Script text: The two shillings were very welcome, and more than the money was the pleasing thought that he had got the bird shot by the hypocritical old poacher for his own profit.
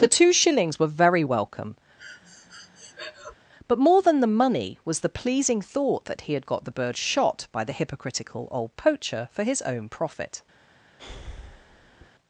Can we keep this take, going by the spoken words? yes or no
no